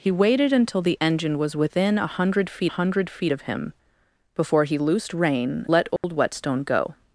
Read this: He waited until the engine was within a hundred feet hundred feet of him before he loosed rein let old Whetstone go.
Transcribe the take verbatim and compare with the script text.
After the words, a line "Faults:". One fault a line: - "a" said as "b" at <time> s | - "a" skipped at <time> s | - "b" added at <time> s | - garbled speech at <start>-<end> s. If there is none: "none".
He waited until the engine was within a hundred feet hundred feet of him before he loosed rein let old Whetstone go.
Faults:
none